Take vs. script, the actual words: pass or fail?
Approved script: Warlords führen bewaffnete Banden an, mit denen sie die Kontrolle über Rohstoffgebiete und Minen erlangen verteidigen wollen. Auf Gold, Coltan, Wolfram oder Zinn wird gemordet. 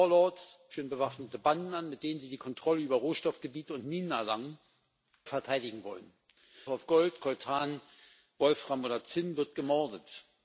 pass